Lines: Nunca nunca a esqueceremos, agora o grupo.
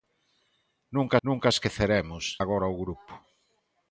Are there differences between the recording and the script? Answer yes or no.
no